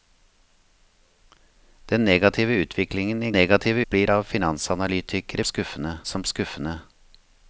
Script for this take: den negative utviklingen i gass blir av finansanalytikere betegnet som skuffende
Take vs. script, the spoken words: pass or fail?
fail